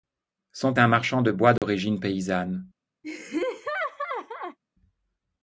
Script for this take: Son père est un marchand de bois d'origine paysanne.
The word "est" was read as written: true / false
false